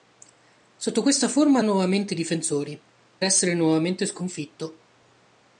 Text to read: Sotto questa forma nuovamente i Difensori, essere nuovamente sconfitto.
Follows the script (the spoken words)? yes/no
yes